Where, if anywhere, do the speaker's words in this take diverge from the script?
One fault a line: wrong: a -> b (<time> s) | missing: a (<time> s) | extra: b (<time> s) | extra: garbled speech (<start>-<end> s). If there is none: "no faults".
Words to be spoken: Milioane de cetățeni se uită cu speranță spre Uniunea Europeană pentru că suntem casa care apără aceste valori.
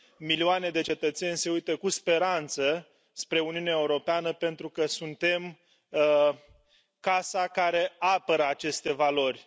no faults